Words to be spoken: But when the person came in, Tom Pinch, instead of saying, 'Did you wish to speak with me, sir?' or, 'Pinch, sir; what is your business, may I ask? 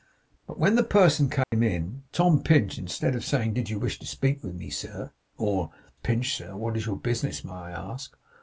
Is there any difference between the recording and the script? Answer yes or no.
no